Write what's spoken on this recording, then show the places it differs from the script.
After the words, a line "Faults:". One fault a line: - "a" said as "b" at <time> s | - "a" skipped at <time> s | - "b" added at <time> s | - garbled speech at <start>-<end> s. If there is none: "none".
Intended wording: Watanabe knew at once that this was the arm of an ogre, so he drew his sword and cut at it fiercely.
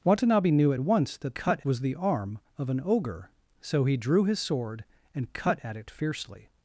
Watanabe knew at once that cut was the arm of an ogre, so he drew his sword and cut at it fiercely.
Faults:
- "this" said as "cut" at 1.3 s